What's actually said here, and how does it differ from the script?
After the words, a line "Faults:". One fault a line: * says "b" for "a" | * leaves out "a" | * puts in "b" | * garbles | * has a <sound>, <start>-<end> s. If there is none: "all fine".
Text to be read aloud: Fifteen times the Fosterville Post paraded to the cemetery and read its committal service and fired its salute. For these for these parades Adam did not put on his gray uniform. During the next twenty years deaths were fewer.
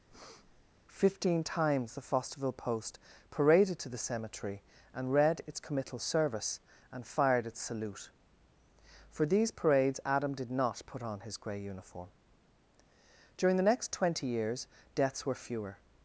Fifteen times the Fosterville Post paraded to the cemetery and read its committal service and fired its salute. For these parades Adam did not put on his gray uniform. During the next twenty years deaths were fewer.
Faults:
* has a breath, 0.1-0.7 s
* leaves out "for these"